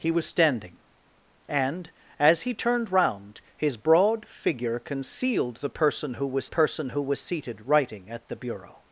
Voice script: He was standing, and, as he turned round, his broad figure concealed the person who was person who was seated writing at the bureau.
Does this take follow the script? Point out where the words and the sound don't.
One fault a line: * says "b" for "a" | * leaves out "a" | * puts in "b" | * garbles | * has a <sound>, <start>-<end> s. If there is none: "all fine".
all fine